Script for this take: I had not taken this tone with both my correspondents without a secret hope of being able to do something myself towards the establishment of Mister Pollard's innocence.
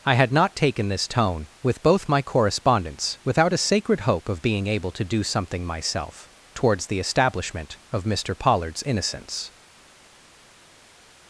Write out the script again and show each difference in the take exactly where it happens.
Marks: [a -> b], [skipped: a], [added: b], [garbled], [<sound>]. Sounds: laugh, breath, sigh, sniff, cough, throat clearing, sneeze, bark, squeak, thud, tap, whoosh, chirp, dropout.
I had not taken this tone with both my correspondents without a [secret -> sacred] hope of being able to do something myself towards the establishment of Mister Pollard's innocence.